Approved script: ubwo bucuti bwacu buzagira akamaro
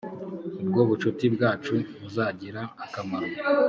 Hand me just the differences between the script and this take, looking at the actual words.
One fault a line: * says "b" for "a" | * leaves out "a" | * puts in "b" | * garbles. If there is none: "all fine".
all fine